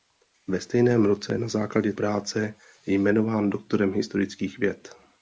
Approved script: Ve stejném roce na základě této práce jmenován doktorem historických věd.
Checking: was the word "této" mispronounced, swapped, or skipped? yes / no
yes